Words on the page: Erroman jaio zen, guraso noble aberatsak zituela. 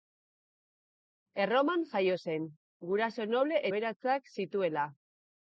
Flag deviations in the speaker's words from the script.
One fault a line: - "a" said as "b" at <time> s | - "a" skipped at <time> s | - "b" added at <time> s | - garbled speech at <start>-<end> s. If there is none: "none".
none